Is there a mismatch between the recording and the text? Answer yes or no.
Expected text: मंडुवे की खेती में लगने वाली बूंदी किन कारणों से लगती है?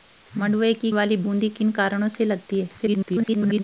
yes